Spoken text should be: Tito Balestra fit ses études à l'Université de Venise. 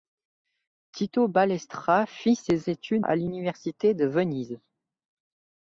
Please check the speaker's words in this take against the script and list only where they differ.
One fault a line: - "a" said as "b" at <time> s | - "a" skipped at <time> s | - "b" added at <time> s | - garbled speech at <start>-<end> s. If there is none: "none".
none